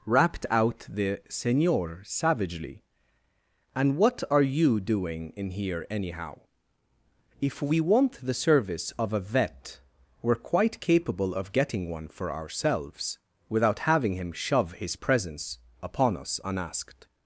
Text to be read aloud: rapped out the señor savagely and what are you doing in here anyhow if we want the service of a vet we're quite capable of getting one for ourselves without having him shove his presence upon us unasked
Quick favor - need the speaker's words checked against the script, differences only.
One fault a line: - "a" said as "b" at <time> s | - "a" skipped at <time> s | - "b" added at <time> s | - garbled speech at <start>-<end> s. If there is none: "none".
none